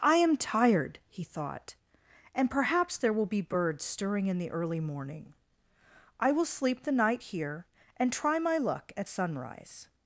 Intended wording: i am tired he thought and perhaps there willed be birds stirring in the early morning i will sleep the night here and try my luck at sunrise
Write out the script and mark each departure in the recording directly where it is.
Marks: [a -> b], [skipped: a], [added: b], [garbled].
i am tired he thought and perhaps there [willed -> will] be birds stirring in the early morning i will sleep the night here and try my luck at sunrise